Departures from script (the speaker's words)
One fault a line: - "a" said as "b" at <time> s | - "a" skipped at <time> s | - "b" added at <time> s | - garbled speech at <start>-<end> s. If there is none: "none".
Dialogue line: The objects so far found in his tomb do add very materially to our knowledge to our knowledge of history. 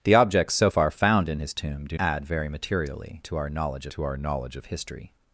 none